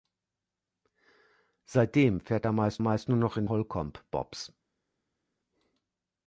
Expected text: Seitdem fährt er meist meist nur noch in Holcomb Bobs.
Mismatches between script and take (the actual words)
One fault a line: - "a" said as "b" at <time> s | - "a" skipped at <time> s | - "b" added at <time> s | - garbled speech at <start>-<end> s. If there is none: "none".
none